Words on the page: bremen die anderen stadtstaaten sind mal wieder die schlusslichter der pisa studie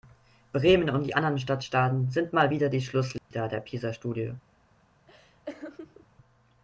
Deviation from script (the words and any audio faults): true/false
true